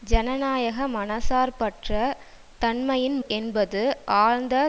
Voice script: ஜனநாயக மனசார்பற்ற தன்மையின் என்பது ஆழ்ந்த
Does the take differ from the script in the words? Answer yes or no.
no